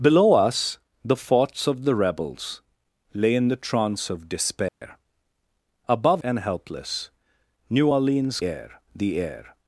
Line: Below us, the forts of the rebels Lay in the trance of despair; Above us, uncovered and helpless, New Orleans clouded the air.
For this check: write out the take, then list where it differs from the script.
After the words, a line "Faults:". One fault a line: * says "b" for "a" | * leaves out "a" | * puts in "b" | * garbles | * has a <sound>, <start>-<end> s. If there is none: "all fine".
Below us, the forts of the rebels Lay in the trance of despair; Above and helpless, New Orleans air the air.
Faults:
* has a dropout, 4.7-4.8 s
* leaves out "us uncovered"
* says "air" for "clouded"